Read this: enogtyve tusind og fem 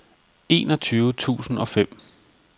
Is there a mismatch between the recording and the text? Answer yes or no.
no